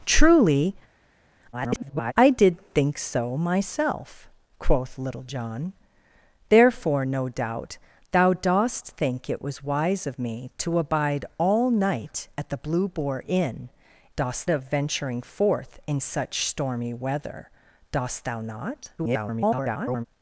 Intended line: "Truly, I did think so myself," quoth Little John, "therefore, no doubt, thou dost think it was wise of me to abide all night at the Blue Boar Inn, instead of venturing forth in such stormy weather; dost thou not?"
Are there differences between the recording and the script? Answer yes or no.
yes